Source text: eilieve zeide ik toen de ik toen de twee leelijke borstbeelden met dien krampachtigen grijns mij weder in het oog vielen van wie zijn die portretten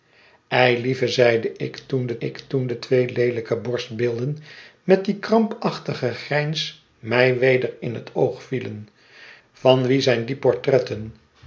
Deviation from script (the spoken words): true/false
false